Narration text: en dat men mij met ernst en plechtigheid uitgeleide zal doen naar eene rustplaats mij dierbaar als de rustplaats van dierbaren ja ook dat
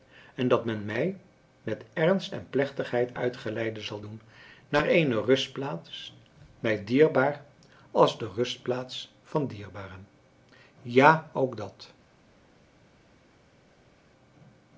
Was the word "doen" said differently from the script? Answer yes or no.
no